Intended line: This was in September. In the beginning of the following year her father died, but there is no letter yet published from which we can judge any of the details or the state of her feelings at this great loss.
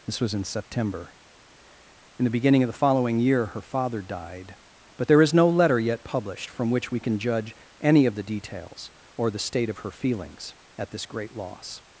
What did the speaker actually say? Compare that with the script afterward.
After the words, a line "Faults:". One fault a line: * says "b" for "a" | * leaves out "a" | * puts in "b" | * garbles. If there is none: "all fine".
This was in September. In the beginning of the following year her father died, but there is no letter yet published from which we can judge any of the details or the state of her feelings at this great loss.
Faults:
all fine